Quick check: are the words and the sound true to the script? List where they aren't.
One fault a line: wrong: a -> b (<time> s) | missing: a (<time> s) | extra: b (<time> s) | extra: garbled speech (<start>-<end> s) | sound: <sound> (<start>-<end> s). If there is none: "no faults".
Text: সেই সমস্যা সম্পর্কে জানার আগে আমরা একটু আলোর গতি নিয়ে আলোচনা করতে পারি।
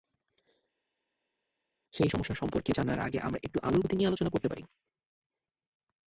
no faults